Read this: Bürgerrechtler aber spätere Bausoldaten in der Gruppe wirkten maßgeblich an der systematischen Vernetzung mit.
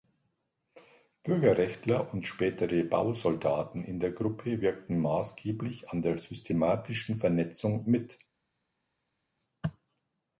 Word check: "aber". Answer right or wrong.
wrong